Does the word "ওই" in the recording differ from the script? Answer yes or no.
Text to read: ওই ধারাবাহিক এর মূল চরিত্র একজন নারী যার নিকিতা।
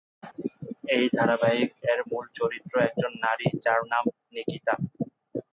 yes